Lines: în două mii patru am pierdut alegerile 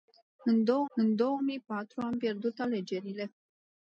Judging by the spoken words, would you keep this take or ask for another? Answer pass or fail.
fail